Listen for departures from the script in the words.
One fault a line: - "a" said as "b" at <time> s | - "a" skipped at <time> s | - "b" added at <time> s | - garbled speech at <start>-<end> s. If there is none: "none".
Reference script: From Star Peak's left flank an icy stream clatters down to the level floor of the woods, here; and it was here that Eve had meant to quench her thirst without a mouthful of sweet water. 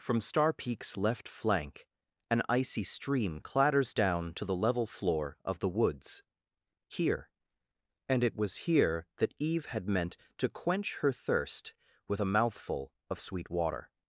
- "without" said as "with" at 12.1 s